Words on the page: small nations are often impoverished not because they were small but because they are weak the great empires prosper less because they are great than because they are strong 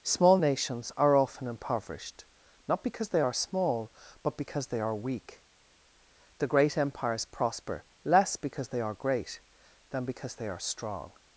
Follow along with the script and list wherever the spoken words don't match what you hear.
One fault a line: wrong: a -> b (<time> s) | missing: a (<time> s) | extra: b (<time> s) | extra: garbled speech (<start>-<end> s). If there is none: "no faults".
wrong: were -> are (3.2 s)